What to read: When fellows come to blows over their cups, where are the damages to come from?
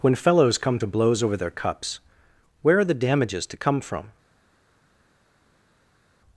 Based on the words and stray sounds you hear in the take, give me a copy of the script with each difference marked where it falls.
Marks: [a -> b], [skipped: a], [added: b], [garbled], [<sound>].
When fellows come to blows over their cups, where are the damages to come from?